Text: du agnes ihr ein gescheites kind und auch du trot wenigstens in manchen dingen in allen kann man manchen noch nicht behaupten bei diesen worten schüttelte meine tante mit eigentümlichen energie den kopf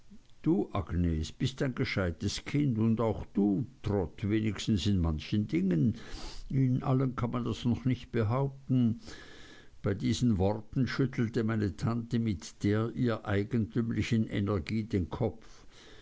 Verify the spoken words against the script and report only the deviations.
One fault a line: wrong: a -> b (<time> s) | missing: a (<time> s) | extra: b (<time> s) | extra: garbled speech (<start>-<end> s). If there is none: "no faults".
wrong: ihr -> bist (1.3 s)
wrong: manchen -> das (7.4 s)
extra: der ihr (12.6 s)